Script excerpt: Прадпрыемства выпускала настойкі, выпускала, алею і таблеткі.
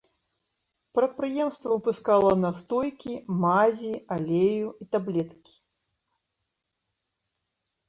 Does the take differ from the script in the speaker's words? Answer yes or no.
yes